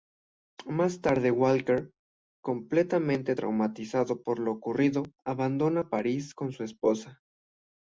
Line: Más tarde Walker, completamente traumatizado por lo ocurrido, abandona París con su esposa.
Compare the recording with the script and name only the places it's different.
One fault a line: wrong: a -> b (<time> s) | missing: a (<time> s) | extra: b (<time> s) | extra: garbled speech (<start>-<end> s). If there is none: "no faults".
no faults